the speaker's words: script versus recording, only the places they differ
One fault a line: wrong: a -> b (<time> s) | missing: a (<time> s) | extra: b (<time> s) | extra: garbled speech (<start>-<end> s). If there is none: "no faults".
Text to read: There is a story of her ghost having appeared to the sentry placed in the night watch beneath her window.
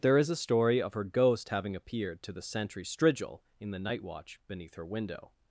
wrong: placed -> strigil (2.8 s)